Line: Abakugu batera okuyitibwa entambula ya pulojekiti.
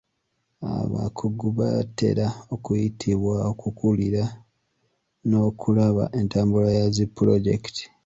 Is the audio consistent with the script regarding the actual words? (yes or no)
no